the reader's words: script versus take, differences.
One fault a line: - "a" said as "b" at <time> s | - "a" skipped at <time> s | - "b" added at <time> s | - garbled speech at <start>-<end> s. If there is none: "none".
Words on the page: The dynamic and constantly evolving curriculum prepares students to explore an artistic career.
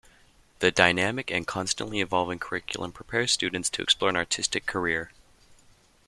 none